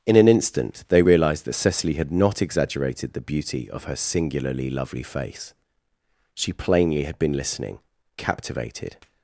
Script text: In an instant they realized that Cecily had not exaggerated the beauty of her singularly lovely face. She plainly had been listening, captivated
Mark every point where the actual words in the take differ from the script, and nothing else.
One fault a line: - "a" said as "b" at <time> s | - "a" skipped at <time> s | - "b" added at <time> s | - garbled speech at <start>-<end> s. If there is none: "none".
none